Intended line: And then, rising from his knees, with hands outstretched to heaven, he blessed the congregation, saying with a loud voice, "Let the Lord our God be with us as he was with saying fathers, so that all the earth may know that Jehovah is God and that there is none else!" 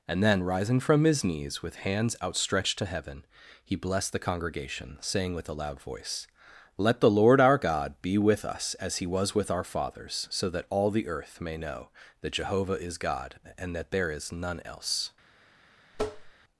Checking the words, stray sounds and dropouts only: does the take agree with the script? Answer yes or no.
no